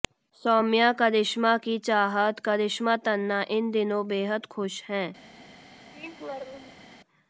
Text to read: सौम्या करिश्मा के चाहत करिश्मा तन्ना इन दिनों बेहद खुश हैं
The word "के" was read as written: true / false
false